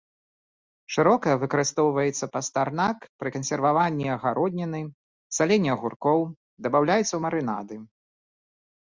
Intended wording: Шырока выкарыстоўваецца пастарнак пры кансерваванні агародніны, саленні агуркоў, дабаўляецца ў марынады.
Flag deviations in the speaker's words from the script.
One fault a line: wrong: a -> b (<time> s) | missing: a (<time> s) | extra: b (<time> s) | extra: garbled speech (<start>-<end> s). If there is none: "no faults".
no faults